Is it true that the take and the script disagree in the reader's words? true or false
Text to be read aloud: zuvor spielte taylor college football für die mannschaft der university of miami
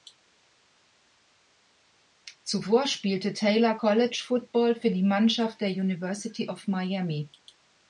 false